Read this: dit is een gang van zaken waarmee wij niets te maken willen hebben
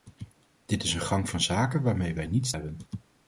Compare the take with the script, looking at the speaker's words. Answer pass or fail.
fail